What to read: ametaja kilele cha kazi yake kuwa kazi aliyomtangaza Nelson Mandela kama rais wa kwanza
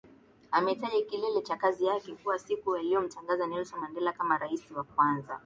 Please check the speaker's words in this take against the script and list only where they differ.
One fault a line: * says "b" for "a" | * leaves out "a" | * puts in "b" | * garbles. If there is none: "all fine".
* says "siku" for "kazi"